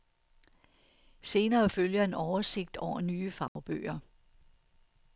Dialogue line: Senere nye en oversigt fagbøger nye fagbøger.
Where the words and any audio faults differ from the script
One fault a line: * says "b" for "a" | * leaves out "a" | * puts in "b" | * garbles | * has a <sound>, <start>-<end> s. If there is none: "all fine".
* says "følger" for "nye"
* says "over" for "fagbøger"
* has a dropout, 3.5-3.6 s